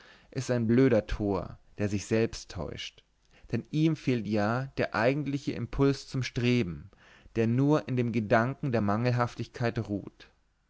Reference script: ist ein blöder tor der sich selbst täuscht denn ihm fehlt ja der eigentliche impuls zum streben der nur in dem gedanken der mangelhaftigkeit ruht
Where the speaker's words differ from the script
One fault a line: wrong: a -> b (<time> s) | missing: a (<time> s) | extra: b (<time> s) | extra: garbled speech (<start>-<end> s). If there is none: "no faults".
no faults